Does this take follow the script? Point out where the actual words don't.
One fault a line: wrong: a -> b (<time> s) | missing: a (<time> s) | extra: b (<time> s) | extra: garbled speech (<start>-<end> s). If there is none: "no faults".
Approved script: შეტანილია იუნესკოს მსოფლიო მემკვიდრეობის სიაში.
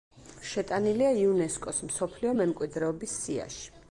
no faults